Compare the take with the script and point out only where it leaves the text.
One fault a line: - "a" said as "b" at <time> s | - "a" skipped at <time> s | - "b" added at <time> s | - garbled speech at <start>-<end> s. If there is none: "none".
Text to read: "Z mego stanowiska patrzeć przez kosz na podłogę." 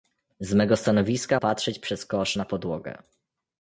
none